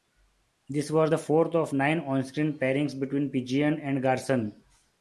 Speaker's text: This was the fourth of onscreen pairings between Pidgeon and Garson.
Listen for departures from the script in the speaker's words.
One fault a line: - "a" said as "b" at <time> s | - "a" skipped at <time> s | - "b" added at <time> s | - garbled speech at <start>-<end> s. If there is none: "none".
- "nine" added at 1.7 s